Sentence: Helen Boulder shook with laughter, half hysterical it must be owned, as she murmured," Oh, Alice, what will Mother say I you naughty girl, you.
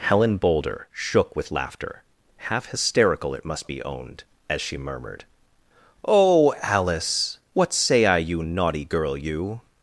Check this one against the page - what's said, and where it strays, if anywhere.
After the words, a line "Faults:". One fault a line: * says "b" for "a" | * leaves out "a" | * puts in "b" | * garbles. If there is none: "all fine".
Helen Boulder shook with laughter, half hysterical it must be owned, as she murmured," Oh, Alice, what say I you naughty girl, you.
Faults:
* leaves out "will Mother"